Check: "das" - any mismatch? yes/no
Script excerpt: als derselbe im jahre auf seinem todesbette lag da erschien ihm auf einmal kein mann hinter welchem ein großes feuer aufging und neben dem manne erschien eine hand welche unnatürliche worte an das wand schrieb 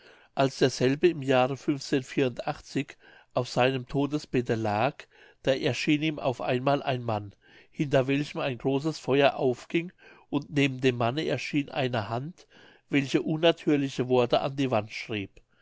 yes